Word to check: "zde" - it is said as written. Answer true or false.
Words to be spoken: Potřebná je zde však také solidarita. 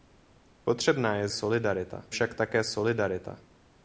false